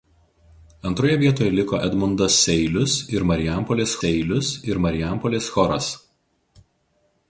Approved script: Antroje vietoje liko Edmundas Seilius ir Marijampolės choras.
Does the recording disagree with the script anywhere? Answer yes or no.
yes